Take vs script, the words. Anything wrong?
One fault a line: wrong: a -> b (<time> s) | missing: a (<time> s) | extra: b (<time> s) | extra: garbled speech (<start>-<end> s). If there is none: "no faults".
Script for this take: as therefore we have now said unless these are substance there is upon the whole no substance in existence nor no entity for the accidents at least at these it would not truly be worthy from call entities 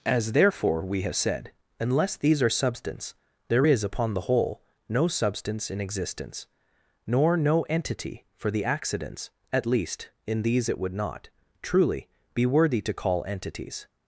missing: now (1.1 s)
wrong: at -> in (10.2 s)
wrong: from -> to (12.8 s)